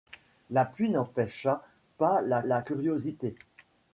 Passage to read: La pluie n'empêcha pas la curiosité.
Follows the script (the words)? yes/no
no